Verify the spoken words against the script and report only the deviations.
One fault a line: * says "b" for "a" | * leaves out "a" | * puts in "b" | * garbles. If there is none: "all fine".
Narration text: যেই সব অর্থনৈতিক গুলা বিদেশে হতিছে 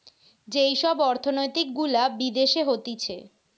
all fine